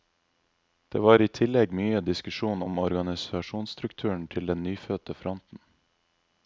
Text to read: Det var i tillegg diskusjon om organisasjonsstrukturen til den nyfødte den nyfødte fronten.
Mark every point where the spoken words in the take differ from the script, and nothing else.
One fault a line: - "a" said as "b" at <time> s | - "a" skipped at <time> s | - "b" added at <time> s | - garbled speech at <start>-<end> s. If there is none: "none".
- "mye" added at 1.8 s
- "den nyfødte" skipped at 5.2 s